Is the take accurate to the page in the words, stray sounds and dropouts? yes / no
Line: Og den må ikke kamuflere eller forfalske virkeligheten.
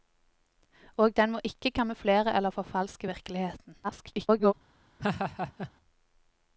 no